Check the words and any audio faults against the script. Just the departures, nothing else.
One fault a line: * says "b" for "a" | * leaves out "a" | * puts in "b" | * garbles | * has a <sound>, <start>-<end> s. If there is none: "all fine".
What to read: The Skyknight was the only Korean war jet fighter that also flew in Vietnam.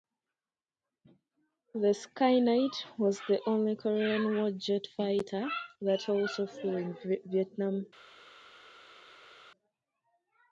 all fine